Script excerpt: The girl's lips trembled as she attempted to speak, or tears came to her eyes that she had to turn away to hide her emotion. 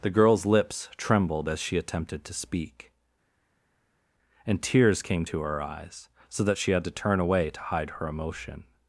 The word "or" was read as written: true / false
false